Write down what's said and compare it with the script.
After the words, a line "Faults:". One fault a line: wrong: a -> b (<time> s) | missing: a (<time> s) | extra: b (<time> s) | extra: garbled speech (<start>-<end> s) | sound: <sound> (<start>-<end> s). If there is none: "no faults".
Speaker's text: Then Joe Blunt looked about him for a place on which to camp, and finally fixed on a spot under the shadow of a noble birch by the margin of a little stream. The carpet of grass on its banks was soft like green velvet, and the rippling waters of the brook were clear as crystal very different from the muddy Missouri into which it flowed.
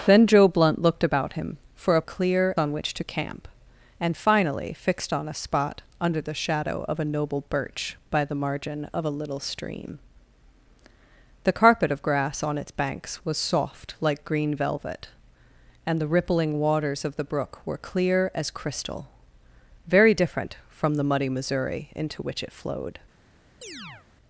Then Joe Blunt looked about him for a clear on which to camp, and finally fixed on a spot under the shadow of a noble birch by the margin of a little stream. The carpet of grass on its banks was soft like green velvet, and the rippling waters of the brook were clear as crystal very different from the muddy Missouri into which it flowed.
Faults:
wrong: place -> clear (2.0 s)
sound: chirp (23.6-24.1 s)